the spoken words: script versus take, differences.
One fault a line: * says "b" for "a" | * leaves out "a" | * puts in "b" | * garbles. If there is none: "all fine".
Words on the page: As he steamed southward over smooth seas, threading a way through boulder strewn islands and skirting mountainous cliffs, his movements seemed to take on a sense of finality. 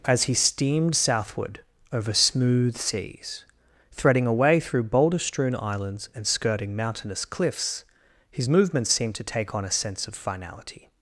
all fine